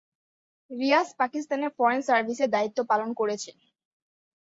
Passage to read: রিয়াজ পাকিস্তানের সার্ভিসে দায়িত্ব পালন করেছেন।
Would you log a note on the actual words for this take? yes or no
yes